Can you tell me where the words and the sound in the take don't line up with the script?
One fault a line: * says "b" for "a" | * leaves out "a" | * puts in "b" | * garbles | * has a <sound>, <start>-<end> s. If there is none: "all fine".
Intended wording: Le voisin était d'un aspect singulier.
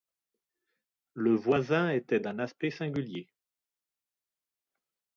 all fine